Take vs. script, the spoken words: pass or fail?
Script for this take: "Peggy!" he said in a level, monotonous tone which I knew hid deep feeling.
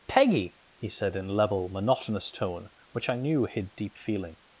fail